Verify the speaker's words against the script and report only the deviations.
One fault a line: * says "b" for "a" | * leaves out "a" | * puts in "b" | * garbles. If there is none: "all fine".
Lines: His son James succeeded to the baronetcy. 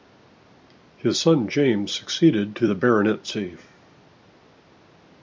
all fine